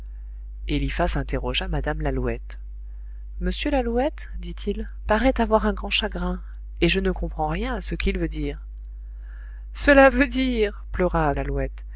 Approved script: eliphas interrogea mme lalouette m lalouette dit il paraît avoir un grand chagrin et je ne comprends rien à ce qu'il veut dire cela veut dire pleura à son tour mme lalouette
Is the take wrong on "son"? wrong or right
wrong